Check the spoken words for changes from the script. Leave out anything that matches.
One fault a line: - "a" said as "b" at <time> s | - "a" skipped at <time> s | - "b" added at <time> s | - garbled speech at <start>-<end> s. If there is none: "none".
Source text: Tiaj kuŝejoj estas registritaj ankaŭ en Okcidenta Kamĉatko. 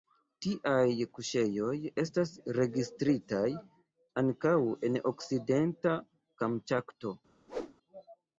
none